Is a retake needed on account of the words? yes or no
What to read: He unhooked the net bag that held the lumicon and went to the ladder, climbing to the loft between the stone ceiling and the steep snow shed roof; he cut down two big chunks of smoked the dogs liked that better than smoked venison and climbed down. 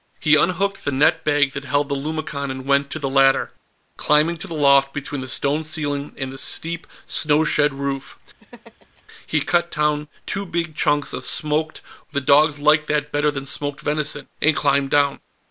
no